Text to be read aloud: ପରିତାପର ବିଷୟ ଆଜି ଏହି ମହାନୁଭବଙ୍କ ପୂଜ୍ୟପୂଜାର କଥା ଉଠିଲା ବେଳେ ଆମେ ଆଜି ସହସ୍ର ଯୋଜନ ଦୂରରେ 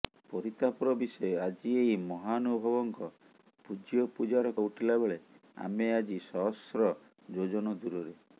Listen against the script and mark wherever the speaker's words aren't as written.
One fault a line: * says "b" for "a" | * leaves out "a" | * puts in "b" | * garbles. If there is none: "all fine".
* leaves out "କଥା"